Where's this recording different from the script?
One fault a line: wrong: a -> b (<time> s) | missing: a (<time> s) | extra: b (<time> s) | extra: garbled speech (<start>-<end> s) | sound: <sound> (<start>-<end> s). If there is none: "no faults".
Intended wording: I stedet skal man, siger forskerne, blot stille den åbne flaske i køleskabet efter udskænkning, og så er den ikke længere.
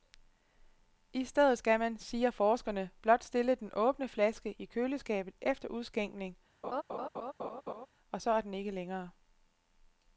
sound: laugh (6.6-7.9 s)